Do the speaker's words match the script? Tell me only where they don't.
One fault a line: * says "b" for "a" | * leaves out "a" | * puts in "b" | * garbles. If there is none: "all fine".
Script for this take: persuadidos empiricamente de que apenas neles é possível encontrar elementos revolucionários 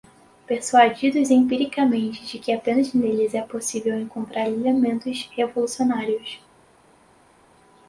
all fine